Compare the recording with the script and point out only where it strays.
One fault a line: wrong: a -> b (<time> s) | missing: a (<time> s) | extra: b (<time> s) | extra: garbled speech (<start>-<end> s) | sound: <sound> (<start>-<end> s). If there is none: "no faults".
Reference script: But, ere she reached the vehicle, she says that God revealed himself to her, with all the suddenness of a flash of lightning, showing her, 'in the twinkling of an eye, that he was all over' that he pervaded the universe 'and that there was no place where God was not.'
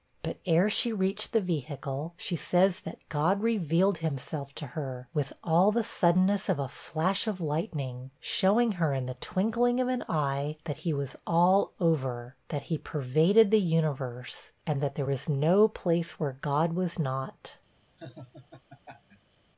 sound: laugh (18.0-19.4 s)